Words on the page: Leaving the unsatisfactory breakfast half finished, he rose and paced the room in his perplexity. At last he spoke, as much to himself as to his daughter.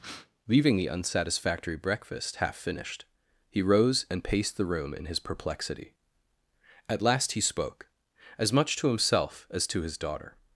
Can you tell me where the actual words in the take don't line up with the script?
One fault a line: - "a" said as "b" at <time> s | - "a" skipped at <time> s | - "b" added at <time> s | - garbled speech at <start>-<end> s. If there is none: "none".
none